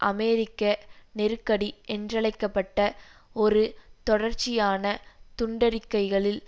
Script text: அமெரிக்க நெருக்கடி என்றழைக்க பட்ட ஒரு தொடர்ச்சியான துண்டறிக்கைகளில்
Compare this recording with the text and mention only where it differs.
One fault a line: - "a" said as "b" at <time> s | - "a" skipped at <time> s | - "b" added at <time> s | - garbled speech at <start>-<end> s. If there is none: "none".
none